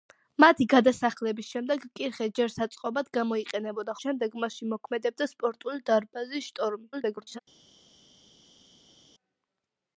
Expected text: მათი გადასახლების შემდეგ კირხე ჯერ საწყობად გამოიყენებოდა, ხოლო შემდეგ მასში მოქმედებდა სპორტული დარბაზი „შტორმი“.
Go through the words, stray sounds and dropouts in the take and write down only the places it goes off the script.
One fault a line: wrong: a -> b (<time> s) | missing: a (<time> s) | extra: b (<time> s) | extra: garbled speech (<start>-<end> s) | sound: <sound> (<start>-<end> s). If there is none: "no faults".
missing: ხოლო (4.0 s)
extra: garbled speech (6.9-7.4 s)